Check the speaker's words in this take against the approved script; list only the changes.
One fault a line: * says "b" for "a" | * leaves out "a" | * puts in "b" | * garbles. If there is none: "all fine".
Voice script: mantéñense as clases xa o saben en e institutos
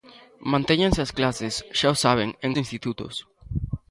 all fine